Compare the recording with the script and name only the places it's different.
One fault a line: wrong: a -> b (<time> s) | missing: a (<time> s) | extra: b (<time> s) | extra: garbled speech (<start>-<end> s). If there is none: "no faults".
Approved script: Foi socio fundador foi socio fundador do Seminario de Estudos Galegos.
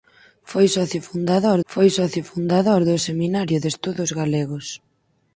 no faults